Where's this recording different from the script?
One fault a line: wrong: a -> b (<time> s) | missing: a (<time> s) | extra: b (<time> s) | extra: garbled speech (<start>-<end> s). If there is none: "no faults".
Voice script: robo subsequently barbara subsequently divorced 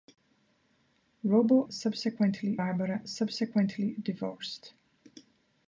no faults